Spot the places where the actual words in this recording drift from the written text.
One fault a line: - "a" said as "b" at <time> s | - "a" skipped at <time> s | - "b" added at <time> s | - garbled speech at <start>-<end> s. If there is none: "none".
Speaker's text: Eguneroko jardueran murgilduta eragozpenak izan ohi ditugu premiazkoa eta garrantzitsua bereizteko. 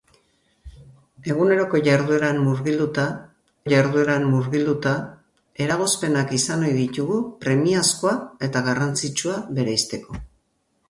- "jardueran murgilduta" added at 3.7 s